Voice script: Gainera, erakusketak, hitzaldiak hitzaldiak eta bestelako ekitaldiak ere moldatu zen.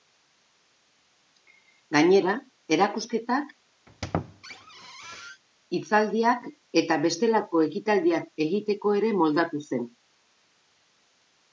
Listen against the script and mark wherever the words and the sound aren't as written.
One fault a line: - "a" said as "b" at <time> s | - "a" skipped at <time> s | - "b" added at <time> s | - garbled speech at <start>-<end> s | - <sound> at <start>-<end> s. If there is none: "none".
- squeak at 3.9-5.4 s
- "hitzaldiak" skipped at 6.5 s
- "egiteko" added at 8.5 s